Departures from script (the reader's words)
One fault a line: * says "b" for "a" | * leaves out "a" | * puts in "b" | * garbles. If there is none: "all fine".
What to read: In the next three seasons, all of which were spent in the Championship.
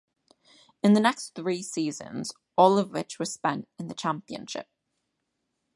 all fine